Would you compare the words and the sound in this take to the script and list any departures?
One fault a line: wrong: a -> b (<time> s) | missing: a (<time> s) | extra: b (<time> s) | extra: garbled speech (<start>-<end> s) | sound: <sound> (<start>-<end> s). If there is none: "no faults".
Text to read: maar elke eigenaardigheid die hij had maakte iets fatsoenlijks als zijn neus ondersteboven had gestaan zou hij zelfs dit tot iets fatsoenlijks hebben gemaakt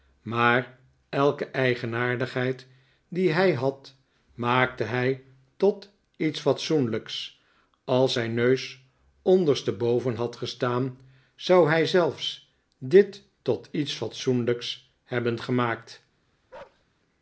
extra: hij tot (4.8 s)
sound: bark (16.5-16.8 s)